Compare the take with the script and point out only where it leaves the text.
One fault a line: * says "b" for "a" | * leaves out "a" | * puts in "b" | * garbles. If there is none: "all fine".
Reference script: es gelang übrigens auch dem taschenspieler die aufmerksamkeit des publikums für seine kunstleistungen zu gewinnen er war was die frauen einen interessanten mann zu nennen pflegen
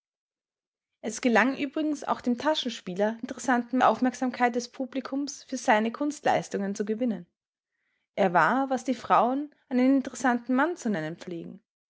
* says "interessanten" for "die"